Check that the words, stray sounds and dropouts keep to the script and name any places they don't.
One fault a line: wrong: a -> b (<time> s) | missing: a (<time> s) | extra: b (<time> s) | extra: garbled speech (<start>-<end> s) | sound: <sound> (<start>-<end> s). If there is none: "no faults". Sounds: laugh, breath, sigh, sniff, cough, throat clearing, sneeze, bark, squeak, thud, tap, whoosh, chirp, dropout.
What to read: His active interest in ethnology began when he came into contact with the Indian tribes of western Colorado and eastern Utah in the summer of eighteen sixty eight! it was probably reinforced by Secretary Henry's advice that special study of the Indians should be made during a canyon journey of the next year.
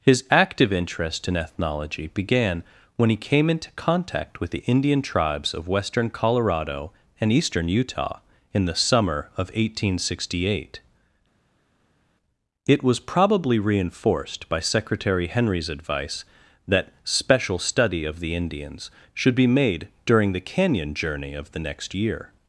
wrong: a -> the (20.3 s)